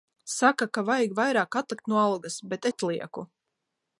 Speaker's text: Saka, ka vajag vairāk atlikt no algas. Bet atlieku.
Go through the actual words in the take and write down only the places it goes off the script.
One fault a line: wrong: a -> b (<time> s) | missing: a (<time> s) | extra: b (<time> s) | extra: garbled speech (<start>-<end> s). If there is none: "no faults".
no faults